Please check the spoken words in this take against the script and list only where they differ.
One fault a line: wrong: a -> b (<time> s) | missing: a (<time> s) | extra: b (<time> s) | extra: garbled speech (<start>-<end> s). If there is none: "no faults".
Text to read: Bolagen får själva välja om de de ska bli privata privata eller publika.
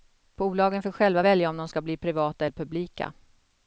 missing: de (1.7 s)
missing: privata (2.5 s)